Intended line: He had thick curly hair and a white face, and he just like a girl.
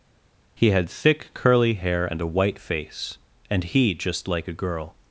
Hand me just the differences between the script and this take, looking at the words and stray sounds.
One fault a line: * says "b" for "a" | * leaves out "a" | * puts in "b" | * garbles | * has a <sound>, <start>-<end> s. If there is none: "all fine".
all fine